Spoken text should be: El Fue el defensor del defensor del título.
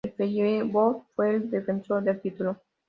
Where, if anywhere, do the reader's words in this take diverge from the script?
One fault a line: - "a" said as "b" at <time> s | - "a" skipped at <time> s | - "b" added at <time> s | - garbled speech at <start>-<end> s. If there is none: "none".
- "Feyenoord" added at 0.1 s
- "defensor del" skipped at 2.2 s